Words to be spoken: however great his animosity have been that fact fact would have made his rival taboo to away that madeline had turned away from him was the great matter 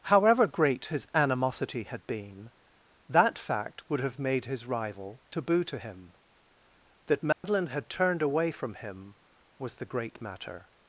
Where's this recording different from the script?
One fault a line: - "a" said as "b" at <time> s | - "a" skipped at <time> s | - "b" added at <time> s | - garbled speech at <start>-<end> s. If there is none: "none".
- "have" said as "had" at 1.8 s
- "fact" skipped at 3.9 s
- "away" said as "him" at 5.8 s